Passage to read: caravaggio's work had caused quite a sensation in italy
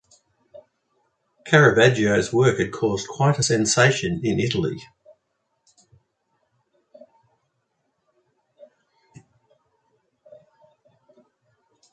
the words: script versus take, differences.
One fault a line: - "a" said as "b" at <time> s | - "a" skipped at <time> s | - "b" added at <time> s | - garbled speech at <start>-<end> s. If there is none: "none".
none